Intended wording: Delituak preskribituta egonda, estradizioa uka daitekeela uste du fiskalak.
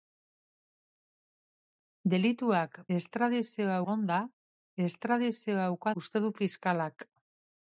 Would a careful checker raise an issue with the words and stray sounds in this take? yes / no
yes